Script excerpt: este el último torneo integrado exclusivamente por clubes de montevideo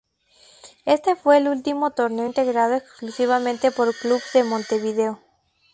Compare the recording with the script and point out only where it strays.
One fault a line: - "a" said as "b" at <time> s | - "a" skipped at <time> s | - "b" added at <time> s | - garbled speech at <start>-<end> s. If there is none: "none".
- "fue" added at 1.1 s